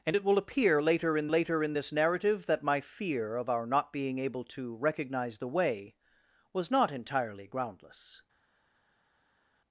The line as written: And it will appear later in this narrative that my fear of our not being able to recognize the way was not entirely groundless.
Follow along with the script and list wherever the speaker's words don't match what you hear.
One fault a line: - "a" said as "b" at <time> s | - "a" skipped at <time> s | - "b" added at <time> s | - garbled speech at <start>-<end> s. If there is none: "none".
- "later in" added at 1.3 s